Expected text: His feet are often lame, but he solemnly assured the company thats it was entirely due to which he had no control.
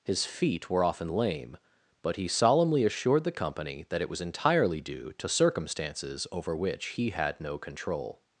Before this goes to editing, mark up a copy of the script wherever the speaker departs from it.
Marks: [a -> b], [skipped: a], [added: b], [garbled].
His feet [are -> were] often lame, but he solemnly assured the company [thats -> that] it was entirely due to [added: circumstances over] which he had no control.